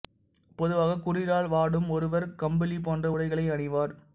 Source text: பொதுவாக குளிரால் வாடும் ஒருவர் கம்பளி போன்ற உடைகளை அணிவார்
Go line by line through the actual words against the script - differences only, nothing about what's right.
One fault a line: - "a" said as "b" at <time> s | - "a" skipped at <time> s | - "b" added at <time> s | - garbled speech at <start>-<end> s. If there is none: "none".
none